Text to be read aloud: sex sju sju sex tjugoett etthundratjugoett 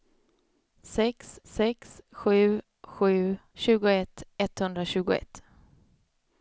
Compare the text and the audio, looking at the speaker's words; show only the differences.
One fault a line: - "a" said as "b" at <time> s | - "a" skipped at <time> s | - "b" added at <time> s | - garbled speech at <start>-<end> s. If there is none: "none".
- "sex" added at 1.5 s
- "sex" skipped at 3.4 s